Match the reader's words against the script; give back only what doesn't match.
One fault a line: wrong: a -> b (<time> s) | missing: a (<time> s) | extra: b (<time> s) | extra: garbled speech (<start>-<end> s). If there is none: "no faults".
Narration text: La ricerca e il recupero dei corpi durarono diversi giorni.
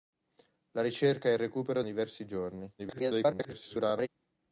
missing: dei corpi durarono (1.8 s)
extra: garbled speech (2.8-4.1 s)